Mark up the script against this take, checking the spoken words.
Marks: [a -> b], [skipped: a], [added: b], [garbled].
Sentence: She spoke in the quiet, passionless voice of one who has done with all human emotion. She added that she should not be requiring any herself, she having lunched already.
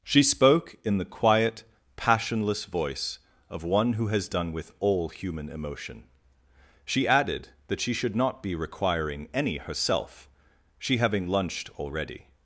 She spoke in the quiet, passionless voice of one who has done with all human emotion. She added that she should not be requiring any herself, she having lunched already.